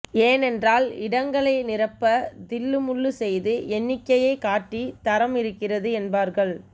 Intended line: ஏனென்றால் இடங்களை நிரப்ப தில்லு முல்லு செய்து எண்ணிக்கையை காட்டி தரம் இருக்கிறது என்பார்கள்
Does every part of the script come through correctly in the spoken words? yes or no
yes